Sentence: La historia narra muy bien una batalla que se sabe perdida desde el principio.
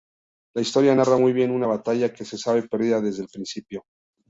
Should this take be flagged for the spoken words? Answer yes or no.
no